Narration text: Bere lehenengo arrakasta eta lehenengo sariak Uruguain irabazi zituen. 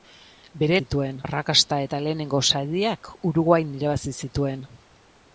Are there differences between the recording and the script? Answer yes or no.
yes